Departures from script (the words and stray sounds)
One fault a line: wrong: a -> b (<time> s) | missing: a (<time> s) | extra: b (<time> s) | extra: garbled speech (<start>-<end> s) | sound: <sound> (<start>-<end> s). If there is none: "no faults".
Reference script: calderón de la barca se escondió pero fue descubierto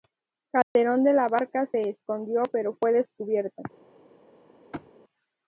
sound: dropout (0.6-0.8 s)
sound: thud (4.7-4.9 s)